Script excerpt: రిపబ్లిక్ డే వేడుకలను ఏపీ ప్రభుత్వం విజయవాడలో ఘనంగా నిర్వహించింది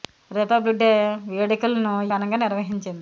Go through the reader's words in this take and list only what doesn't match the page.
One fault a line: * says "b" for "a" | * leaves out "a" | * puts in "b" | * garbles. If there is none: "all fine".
* leaves out "ఏపీ ప్రభుత్వం విజయవాడలో"